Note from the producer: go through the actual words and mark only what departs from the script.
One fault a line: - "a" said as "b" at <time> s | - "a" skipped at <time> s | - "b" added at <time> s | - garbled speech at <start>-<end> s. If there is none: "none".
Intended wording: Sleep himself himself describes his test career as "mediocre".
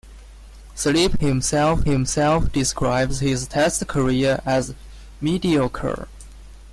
none